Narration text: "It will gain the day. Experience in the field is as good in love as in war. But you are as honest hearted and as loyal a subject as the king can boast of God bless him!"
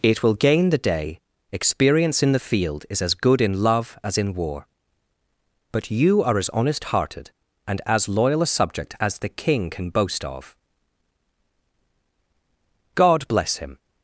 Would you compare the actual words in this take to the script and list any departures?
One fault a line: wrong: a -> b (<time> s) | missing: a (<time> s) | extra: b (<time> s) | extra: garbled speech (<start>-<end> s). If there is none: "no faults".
no faults